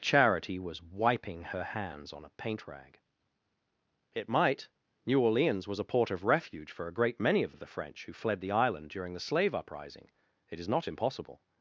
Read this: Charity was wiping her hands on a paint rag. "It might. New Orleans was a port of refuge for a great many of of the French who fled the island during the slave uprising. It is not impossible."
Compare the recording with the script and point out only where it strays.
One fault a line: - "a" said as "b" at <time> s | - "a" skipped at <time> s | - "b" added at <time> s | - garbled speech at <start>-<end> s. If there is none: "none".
none